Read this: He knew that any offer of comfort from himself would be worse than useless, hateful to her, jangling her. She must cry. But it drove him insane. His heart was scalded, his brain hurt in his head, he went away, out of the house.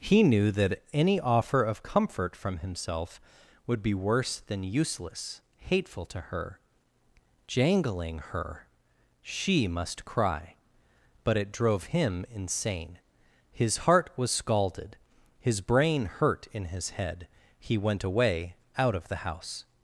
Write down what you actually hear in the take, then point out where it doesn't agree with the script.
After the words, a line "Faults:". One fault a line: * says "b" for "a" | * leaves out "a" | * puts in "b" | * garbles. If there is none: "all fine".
He knew that any offer of comfort from himself would be worse than useless, hateful to her, jangling her. She must cry. But it drove him insane. His heart was scalded, his brain hurt in his head, he went away, out of the house.
Faults:
all fine